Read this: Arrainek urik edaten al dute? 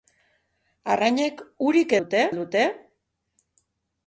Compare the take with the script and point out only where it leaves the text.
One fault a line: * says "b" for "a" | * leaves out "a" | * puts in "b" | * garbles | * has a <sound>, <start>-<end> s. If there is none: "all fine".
* says "dute" for "edaten"